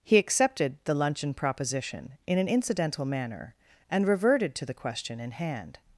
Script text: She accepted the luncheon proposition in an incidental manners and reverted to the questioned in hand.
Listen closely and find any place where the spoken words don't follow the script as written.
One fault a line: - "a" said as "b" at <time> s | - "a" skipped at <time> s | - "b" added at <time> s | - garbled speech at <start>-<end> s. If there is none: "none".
- "She" said as "He" at 0.0 s
- "manners" said as "manner" at 3.0 s
- "questioned" said as "question" at 4.7 s